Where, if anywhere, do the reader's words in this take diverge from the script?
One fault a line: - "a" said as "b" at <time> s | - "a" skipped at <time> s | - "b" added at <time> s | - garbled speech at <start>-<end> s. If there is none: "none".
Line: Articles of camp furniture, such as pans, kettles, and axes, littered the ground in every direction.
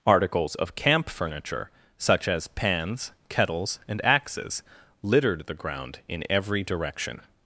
none